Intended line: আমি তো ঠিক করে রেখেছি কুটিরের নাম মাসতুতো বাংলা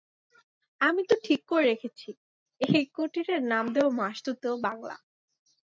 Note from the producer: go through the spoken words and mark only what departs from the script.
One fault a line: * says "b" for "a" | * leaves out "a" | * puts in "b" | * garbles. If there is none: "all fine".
* puts in "এই"
* puts in "দেব"